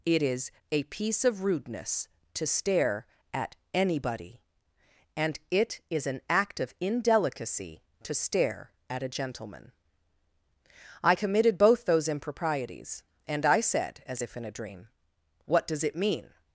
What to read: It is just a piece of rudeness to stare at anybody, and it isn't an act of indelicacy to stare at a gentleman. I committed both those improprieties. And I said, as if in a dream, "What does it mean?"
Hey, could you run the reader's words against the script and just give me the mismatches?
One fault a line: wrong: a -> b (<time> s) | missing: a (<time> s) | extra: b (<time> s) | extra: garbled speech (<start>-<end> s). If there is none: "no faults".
missing: just (0.5 s)
wrong: isn't -> is (5.9 s)